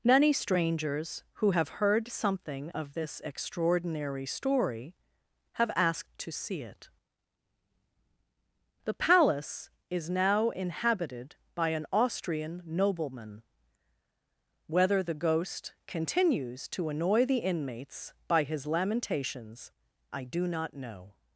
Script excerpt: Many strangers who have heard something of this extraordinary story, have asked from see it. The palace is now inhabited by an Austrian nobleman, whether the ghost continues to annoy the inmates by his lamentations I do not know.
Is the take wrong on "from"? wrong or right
wrong